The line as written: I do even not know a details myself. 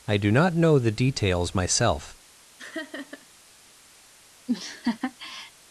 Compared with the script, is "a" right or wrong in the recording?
wrong